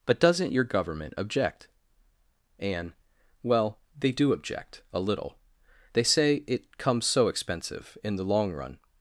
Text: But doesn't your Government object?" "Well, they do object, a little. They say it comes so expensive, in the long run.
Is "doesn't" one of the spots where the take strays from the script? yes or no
no